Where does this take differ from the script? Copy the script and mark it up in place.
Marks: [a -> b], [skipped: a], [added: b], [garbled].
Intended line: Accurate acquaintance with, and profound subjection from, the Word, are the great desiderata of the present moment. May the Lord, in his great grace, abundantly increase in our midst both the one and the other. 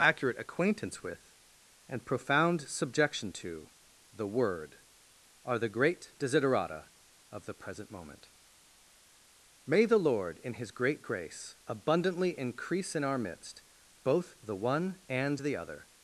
Accurate acquaintance with, and profound subjection [from, -> to] the Word, are the great desiderata of the present moment. May the Lord, in his great grace, abundantly increase in our midst both the one and the other.